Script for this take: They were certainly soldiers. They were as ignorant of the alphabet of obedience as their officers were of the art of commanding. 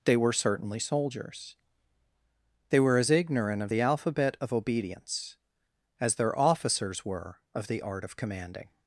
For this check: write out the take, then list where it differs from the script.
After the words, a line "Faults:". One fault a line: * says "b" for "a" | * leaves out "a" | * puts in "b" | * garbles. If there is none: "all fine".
They were certainly soldiers. They were as ignorant of the alphabet of obedience as their officers were of the art of commanding.
Faults:
all fine